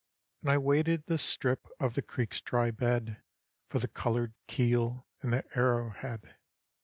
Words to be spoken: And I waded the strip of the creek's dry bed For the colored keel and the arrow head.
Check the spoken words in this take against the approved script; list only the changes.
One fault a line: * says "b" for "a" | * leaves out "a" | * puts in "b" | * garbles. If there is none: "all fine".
all fine